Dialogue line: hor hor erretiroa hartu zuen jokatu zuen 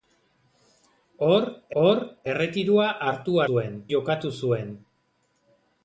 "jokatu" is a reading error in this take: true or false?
false